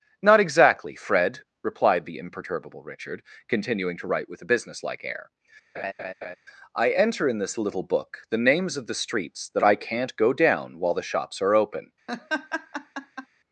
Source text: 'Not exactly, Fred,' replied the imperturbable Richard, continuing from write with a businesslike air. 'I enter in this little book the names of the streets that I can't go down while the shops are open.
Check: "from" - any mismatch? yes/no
yes